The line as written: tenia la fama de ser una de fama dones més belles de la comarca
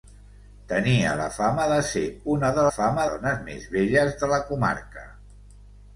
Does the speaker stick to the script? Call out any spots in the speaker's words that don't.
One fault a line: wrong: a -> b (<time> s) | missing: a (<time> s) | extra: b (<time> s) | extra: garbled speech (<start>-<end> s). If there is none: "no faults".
no faults